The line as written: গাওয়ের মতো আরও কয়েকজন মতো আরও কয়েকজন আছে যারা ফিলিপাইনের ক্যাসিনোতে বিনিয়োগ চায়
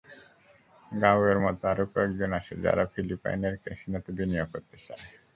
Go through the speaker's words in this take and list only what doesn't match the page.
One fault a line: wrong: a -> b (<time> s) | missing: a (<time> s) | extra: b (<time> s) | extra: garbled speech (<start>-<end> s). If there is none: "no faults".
missing: মতো আরও কয়েকজন (2.3 s)
extra: করতে (4.5 s)